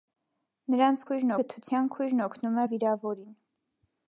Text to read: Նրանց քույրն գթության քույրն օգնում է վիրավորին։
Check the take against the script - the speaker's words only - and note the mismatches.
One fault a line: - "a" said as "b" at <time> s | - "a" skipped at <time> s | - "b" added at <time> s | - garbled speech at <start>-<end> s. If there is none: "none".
none